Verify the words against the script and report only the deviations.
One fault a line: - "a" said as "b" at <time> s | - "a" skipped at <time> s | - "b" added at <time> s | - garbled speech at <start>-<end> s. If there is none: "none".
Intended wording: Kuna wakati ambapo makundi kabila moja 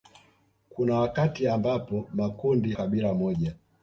none